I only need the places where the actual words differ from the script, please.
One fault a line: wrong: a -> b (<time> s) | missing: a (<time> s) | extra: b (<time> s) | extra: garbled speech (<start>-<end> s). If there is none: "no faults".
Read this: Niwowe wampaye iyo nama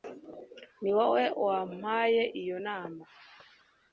no faults